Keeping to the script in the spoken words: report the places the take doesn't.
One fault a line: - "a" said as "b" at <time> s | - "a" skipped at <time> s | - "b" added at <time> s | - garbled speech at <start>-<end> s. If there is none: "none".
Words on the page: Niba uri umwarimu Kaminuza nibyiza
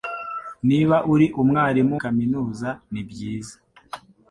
none